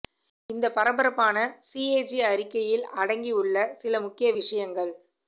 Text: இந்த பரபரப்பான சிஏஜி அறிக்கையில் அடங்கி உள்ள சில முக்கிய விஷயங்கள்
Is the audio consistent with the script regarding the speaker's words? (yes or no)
yes